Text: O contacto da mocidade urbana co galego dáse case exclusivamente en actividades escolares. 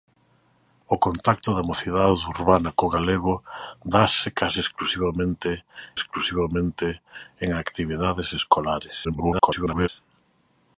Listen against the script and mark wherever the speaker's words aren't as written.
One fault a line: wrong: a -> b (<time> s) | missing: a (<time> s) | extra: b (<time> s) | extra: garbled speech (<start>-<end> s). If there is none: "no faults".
extra: exclusivamente (6.0 s)
extra: garbled speech (9.0-9.9 s)